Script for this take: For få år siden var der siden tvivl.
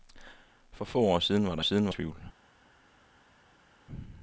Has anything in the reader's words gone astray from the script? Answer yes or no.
no